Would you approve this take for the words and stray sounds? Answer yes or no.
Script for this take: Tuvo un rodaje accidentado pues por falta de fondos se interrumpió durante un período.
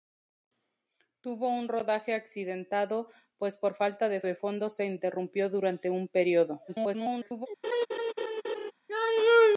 no